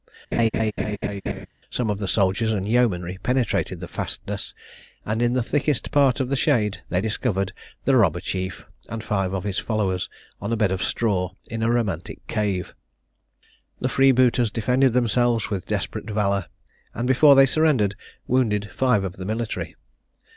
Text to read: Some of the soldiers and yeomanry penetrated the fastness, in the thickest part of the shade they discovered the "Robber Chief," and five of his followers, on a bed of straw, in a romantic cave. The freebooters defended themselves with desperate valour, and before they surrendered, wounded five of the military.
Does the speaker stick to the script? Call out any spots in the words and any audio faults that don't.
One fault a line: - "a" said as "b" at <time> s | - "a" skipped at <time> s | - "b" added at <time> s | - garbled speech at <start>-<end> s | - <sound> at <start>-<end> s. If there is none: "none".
- laugh at 0.3-1.5 s
- "and" added at 5.0 s